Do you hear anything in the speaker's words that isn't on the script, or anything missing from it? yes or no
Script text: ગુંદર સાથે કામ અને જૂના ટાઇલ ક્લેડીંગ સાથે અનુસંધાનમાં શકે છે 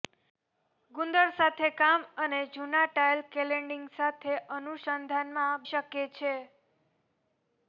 no